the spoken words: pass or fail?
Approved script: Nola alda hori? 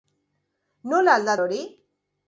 pass